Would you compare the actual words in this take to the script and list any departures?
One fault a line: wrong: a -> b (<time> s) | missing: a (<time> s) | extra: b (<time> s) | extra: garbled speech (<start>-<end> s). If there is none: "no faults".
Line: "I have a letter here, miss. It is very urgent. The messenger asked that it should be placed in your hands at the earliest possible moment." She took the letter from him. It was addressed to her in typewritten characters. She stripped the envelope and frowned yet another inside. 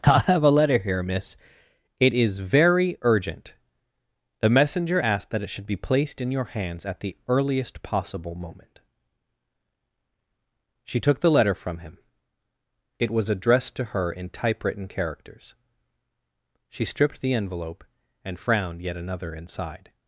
no faults